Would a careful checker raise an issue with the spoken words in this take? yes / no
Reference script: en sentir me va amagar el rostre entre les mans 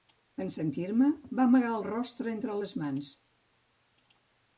no